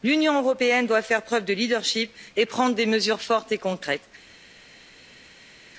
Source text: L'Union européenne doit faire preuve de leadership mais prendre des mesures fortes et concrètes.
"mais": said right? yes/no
no